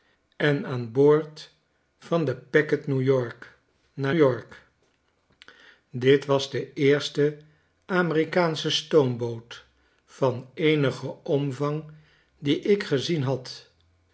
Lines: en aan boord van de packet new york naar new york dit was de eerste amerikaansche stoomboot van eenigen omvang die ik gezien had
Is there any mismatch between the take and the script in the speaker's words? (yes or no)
yes